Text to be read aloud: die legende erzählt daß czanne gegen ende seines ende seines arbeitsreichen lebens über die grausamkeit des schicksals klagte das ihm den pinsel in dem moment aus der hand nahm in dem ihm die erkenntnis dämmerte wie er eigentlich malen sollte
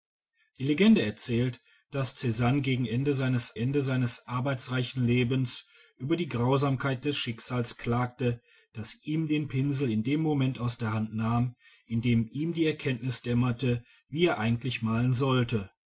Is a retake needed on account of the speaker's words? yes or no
no